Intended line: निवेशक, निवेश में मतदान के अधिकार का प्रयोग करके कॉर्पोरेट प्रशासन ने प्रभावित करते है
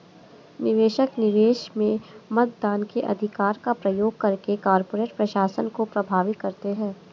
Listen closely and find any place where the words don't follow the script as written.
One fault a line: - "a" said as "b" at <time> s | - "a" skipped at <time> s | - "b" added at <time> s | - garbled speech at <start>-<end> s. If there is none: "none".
- "ने" said as "को" at 5.7 s